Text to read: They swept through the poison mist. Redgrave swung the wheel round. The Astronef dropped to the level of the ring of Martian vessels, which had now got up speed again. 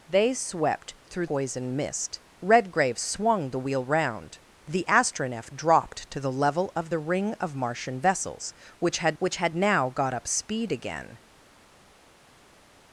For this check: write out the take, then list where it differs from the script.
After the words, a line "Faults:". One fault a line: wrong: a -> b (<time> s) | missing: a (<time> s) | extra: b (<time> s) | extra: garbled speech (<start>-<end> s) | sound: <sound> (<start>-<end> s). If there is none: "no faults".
They swept through poison mist. Redgrave swung the wheel round. The Astronef dropped to the level of the ring of Martian vessels, which had which had now got up speed again.
Faults:
missing: the (1.3 s)
extra: which had (9.2 s)